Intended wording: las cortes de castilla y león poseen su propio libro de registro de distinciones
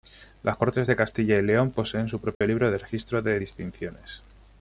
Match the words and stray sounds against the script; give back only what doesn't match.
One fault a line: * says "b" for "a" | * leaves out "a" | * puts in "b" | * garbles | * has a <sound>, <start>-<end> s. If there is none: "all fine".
* has a dropout, 2.3-2.4 s